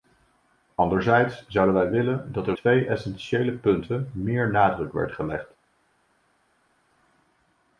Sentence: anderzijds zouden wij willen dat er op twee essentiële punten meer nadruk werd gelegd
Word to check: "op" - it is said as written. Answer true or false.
false